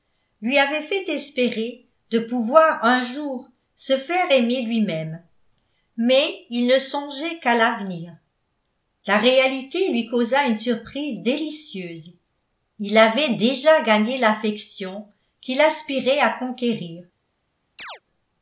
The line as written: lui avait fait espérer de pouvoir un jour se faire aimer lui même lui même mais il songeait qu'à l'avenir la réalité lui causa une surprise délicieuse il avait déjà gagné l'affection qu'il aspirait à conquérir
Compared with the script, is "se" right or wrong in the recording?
right